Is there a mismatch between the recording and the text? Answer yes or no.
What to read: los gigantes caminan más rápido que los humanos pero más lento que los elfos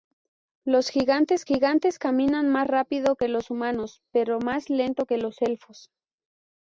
yes